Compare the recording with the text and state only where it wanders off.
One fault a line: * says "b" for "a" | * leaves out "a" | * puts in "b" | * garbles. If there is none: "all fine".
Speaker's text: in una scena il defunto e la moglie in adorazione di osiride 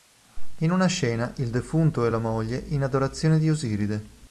all fine